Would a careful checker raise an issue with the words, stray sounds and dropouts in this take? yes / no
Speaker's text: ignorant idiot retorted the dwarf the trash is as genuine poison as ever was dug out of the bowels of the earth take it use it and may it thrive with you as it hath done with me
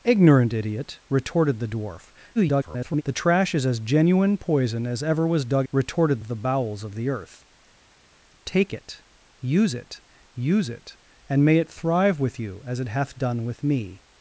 yes